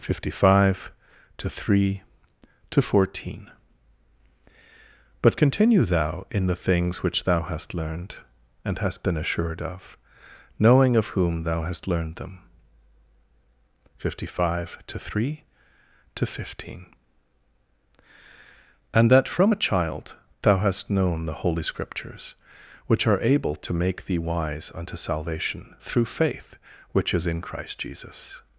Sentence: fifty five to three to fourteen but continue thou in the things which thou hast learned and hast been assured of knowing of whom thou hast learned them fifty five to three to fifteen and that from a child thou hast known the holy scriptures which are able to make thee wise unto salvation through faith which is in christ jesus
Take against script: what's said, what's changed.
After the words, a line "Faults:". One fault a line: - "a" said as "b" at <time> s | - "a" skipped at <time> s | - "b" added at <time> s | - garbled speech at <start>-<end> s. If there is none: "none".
fifty five to three to fourteen but continue thou in the things which thou hast learned and hast been assured of knowing of whom thou hast learned them fifty five to three to fifteen and that from a child thou hast known the holy scriptures which are able to make thee wise unto salvation through faith which is in christ jesus
Faults:
none